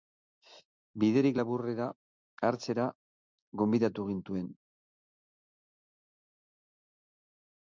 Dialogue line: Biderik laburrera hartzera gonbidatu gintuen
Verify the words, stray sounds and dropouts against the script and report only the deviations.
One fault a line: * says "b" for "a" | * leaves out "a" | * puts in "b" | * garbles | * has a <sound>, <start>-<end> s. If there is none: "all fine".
all fine